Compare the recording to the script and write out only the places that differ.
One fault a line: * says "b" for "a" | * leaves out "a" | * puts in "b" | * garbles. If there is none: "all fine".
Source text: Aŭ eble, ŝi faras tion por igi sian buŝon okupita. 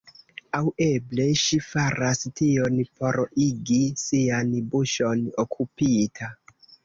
all fine